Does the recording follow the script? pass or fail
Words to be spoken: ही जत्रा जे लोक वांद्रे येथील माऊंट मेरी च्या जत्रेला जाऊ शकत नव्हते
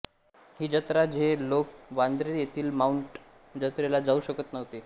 fail